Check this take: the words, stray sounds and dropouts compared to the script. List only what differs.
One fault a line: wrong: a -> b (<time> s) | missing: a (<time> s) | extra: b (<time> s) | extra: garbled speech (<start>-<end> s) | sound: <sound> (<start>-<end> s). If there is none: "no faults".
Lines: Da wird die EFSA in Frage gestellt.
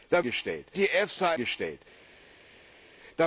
wrong: wird -> gestellt (0.2 s)
missing: in Frage (1.3 s)